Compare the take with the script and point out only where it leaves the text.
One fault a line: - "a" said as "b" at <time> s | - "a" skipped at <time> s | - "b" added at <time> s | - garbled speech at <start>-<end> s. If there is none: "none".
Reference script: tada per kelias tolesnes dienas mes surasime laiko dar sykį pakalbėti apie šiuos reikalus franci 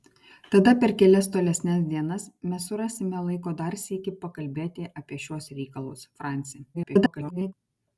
- garbled speech at 6.7-7.5 s